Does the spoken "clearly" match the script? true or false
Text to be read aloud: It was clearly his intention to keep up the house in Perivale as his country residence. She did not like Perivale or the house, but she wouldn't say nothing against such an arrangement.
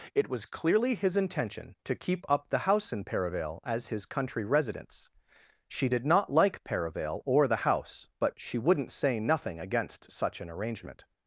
true